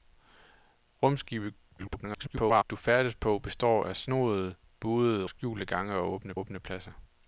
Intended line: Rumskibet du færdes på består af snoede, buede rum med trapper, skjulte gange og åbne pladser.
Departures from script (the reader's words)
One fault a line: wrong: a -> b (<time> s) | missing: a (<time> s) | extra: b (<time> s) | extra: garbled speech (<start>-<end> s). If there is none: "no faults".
extra: garbled speech (1.8-2.6 s)
missing: rum med trapper (5.2 s)
extra: åbne (6.4 s)